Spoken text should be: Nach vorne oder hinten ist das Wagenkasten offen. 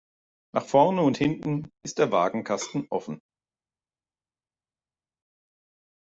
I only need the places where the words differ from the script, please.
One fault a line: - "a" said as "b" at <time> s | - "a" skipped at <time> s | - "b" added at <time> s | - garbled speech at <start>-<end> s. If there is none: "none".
- "oder" said as "und" at 1.0 s
- "das" said as "der" at 2.0 s